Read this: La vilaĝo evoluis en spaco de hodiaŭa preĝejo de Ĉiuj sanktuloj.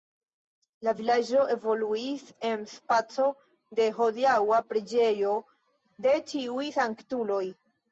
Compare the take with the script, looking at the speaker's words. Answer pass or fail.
pass